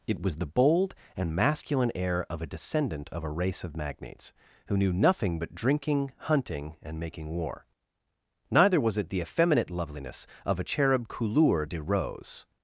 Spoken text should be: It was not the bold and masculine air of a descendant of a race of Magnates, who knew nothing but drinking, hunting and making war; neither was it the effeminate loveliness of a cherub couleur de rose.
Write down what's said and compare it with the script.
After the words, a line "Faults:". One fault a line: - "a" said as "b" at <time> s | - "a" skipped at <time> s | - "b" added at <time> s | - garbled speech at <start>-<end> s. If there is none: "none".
It was the bold and masculine air of a descendant of a race of Magnates, who knew nothing but drinking, hunting and making war; neither was it the effeminate loveliness of a cherub couleur de rose.
Faults:
- "not" skipped at 0.4 s